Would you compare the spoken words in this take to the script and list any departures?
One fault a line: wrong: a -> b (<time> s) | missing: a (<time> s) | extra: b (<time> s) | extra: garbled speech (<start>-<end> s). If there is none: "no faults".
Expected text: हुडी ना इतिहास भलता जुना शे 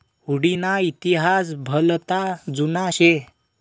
no faults